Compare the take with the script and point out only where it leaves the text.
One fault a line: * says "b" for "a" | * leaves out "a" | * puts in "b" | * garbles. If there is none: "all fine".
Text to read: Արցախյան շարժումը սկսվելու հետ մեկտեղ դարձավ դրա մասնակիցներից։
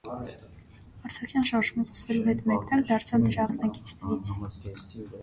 all fine